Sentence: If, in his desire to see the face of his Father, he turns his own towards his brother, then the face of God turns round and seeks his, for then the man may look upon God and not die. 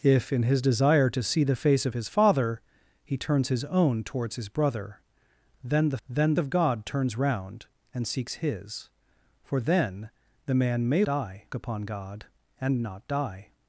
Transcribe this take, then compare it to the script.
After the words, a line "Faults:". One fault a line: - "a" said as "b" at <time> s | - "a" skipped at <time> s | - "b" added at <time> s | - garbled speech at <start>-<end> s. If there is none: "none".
If, in his desire to see the face of his Father, he turns his own towards his brother, then the then of God turns round and seeks his, for then the man may die upon God and not die.
Faults:
- "face" said as "then" at 6.1 s
- "look" said as "die" at 11.0 s